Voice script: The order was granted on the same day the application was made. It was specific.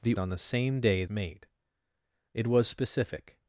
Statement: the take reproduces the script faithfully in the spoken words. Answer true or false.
false